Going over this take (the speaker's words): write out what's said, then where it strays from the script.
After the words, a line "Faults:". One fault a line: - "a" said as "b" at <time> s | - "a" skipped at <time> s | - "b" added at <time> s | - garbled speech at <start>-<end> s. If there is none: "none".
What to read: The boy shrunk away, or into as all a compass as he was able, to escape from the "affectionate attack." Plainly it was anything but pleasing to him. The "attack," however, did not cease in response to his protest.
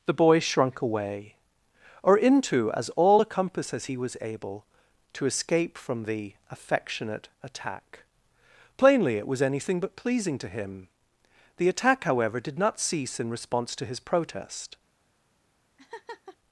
The boy shrunk away, or into as all a compass as he was able, to escape from the "affectionate attack." Plainly it was anything but pleasing to him. The "attack," however, did not cease in response to his protest.
Faults:
none